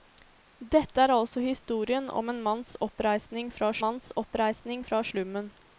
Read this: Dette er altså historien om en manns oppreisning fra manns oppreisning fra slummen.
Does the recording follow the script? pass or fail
pass